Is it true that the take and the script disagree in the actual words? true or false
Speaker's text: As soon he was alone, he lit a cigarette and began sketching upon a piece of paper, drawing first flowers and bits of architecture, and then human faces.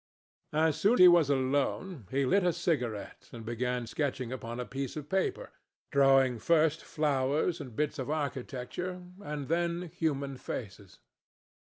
false